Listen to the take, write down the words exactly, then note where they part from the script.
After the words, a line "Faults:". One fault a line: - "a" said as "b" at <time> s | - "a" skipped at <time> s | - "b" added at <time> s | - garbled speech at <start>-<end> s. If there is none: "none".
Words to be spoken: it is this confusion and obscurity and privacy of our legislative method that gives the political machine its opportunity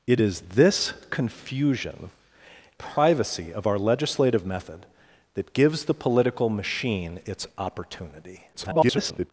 it is this confusion privacy of our legislative method that gives the political machine its opportunity [garbled]
Faults:
- "and obscurity and" skipped at 2.1 s
- garbled speech at 8.5-9.3 s